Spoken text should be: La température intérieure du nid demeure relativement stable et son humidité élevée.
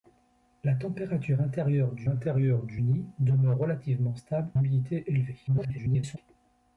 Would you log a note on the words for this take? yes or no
yes